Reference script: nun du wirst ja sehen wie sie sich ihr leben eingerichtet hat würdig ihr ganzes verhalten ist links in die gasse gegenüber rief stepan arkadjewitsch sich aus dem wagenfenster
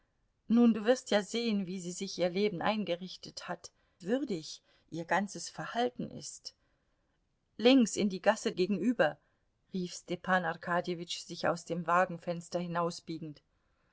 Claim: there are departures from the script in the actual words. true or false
false